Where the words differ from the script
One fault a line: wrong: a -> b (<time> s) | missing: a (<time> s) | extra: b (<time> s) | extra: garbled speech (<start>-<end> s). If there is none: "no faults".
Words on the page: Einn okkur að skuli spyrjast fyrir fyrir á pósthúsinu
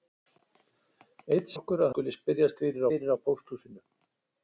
no faults